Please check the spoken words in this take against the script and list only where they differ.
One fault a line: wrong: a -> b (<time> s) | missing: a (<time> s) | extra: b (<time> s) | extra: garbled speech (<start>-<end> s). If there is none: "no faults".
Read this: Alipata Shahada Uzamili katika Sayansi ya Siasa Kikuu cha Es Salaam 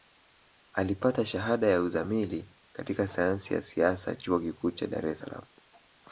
extra: ya (1.7 s)
extra: Chuo (4.2 s)
extra: Dar (4.9 s)